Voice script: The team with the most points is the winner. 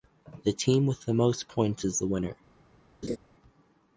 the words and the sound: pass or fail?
fail